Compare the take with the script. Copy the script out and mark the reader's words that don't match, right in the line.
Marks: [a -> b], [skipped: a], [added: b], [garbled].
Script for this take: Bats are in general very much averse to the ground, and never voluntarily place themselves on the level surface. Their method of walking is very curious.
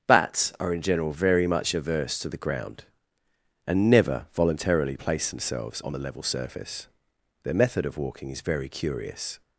Bats are in general very much averse to the ground, and never voluntarily place themselves on the level surface. Their method of walking is very curious.